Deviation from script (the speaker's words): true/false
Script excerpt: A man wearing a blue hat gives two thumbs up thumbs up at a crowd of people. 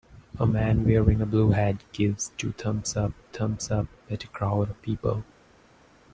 false